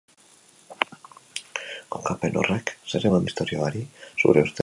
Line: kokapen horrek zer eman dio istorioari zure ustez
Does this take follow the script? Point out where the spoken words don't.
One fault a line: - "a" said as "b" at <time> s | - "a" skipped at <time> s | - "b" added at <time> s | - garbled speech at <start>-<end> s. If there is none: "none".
- "dio" skipped at 3.2 s